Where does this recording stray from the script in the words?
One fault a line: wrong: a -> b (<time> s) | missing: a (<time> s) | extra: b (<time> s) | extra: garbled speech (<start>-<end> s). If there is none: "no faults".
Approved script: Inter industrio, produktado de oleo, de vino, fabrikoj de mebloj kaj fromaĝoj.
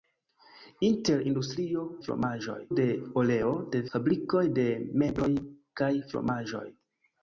wrong: produktado -> fromaĝoj (2.1 s)
missing: vino (3.8 s)